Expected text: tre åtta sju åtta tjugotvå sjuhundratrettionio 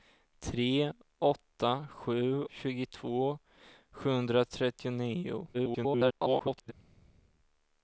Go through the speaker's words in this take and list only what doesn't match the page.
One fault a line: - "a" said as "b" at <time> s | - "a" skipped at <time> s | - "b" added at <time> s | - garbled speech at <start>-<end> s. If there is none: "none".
- "åtta" skipped at 2.5 s
- garbled speech at 5.5-6.7 s